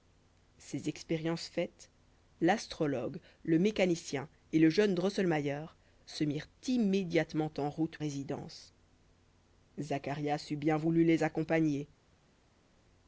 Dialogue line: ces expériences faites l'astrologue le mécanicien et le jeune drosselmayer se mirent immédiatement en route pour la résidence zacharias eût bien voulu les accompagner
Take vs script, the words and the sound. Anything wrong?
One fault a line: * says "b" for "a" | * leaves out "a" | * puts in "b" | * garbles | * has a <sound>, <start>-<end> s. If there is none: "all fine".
* leaves out "pour la"